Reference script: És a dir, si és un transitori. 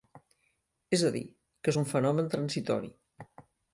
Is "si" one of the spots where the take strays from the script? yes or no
yes